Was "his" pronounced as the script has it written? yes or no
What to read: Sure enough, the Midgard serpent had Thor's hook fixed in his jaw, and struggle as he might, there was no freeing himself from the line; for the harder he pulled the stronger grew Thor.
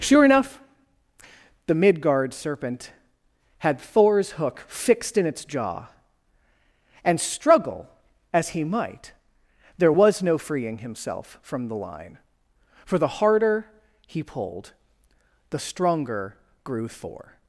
no